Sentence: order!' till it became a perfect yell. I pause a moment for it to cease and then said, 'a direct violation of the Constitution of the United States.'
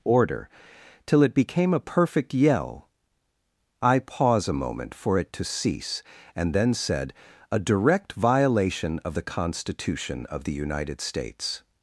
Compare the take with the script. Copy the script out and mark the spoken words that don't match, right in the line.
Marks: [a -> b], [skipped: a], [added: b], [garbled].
order!' till it became a perfect yell. I pause a moment for it to cease and then said, 'a direct violation of the Constitution of the United States.'